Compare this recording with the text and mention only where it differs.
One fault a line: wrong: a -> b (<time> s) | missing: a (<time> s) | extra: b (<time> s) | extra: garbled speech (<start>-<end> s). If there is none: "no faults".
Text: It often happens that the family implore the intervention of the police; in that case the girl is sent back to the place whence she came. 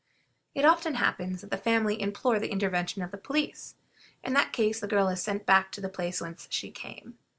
no faults